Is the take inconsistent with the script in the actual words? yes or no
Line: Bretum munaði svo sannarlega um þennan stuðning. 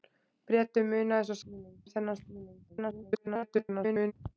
yes